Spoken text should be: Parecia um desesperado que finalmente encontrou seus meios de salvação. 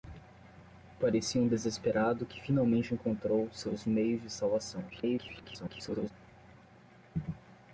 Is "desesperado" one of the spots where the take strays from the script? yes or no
no